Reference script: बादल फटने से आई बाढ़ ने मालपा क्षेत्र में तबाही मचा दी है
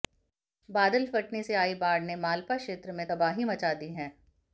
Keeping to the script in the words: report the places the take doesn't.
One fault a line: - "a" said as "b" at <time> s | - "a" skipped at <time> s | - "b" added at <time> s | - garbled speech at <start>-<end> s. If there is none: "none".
none